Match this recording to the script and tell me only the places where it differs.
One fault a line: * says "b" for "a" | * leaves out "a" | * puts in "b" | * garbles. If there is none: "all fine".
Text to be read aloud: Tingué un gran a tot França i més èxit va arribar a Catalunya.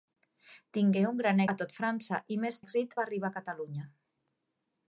all fine